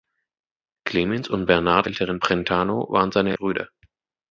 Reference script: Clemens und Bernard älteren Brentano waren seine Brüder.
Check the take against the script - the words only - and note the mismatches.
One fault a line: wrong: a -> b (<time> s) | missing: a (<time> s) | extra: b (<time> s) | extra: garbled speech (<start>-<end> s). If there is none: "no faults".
no faults